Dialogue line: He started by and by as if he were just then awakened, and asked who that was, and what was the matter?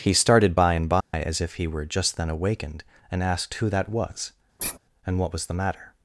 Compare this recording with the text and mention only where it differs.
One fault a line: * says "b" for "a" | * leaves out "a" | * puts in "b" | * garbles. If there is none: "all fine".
all fine